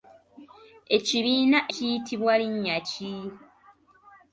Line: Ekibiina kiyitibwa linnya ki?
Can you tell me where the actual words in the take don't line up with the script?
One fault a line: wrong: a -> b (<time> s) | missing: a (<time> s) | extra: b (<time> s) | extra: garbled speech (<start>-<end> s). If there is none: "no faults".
no faults